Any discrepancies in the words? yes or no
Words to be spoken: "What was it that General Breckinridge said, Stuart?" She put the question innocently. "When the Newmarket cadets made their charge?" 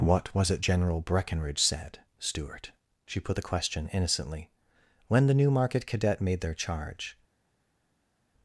yes